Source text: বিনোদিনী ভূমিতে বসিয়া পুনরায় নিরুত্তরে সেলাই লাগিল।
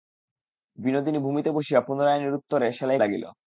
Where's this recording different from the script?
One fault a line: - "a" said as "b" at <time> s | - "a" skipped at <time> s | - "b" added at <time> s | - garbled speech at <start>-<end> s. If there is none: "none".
none